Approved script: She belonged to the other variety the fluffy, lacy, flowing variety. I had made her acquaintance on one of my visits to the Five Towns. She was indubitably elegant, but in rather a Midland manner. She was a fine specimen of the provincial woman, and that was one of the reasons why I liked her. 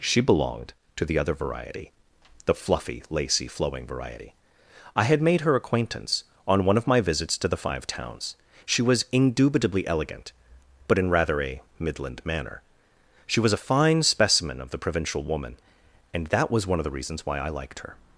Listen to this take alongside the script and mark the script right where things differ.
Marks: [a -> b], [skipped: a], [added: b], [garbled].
She belonged to the other variety the fluffy, lacy, flowing variety. I had made her acquaintance on one of my visits to the Five Towns. She was indubitably elegant, but in rather a Midland manner. She was a fine specimen of the provincial woman, and that was one of the reasons why I liked her.